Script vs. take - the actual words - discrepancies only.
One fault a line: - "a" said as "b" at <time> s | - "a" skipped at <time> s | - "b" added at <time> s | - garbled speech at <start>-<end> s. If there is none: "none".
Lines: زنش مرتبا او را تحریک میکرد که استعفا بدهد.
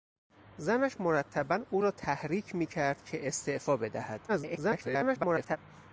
- garbled speech at 4.3-5.6 s